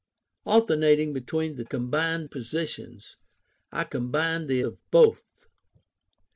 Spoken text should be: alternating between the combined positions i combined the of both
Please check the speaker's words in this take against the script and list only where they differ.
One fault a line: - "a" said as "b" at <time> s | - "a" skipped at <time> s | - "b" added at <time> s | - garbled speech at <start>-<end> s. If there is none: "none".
none